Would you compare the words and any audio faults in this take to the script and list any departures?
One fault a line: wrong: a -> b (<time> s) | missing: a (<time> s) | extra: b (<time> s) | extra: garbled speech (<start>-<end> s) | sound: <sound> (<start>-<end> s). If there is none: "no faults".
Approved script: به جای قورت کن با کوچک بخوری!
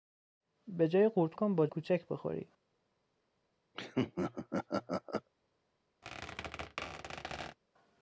sound: laugh (3.7-5.3 s)
sound: squeak (6.0-7.6 s)